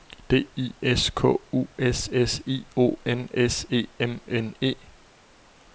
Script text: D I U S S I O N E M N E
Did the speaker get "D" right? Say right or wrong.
right